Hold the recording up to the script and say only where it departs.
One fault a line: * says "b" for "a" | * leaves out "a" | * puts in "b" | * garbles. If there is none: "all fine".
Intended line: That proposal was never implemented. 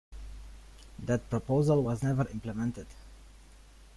all fine